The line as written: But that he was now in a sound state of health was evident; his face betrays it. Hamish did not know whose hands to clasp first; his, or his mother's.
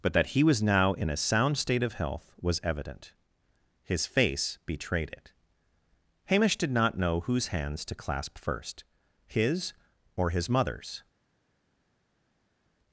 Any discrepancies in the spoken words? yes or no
yes